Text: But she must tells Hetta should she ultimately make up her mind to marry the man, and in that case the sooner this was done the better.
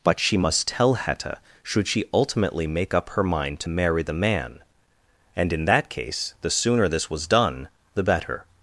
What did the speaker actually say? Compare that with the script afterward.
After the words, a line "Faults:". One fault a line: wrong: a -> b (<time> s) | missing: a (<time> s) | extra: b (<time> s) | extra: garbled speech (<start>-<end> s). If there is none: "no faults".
But she must tell Hetta should she ultimately make up her mind to marry the man, and in that case the sooner this was done the better.
Faults:
wrong: tells -> tell (0.7 s)